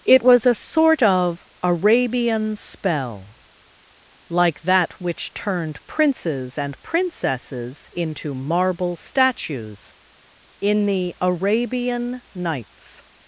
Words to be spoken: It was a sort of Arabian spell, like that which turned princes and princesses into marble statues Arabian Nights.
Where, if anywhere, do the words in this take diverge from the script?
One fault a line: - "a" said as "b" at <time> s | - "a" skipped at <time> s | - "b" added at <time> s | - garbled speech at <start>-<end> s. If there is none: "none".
- "in the" added at 10.6 s